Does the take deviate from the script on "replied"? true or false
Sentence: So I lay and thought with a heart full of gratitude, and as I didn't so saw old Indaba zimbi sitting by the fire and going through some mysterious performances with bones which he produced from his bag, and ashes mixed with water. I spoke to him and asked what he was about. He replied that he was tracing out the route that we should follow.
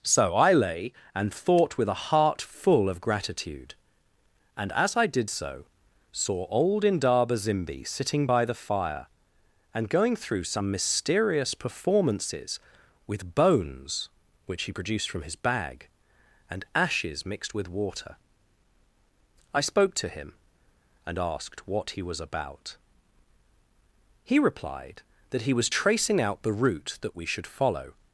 false